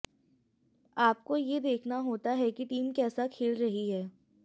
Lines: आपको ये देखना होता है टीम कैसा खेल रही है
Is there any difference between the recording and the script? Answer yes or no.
yes